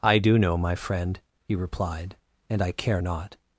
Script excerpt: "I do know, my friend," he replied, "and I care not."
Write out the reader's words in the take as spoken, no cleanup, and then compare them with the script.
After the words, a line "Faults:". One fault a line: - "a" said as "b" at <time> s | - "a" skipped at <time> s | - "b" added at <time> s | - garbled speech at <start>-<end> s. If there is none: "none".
"I do know, my friend," he replied, "and I care not."
Faults:
none